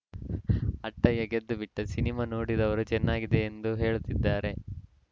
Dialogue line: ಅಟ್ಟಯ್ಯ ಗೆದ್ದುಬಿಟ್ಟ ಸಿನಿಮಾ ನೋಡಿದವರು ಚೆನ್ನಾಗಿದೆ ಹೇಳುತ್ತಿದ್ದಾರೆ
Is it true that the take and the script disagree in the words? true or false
true